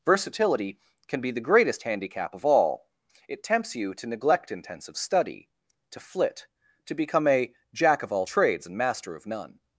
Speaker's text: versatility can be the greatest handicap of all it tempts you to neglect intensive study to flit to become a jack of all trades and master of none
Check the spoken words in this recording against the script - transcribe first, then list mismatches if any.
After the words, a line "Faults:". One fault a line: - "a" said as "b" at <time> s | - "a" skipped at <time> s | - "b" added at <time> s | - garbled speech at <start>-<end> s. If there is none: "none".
versatility can be the greatest handicap of all it tempts you to neglect intensive study to flit to become a jack of all trades and master of none
Faults:
none